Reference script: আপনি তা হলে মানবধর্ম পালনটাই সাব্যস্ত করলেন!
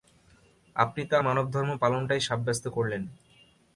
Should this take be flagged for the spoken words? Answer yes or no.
yes